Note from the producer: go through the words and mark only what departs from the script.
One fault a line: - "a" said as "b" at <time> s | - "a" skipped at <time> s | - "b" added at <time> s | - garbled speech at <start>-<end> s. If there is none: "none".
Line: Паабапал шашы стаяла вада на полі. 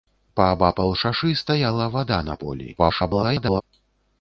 - garbled speech at 2.8-3.6 s